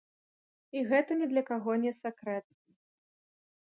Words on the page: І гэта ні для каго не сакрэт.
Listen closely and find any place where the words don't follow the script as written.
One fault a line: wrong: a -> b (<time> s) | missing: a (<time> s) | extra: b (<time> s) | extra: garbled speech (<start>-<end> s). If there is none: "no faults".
no faults